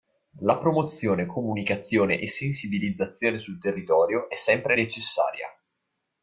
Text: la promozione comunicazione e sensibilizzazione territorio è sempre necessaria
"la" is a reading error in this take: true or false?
false